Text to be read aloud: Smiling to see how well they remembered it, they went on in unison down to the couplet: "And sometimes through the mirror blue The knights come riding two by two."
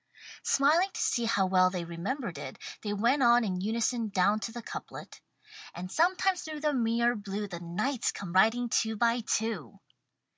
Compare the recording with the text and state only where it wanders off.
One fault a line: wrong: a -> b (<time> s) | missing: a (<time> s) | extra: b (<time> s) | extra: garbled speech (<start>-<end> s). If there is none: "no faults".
no faults